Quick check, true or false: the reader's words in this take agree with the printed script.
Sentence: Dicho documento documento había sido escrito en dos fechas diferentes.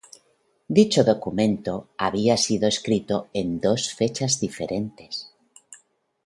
false